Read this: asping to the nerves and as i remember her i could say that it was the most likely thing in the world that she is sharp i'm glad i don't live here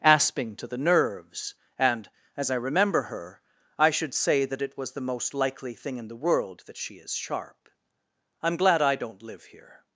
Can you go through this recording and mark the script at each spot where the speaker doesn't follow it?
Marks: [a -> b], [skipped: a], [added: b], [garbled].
asping to the nerves and as i remember her i [could -> should] say that it was the most likely thing in the world that she is sharp i'm glad i don't live here